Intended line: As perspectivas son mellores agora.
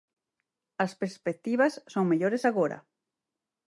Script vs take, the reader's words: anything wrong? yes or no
no